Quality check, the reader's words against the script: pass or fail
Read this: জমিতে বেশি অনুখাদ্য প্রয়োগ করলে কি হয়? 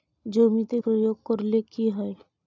fail